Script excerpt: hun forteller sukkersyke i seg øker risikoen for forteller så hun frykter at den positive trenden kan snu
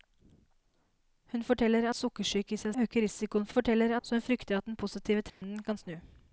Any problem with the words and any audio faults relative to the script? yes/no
yes